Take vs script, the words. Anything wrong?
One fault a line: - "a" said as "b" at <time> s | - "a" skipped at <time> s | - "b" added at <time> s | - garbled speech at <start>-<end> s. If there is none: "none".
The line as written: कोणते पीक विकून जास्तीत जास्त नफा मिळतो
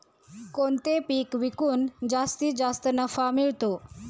none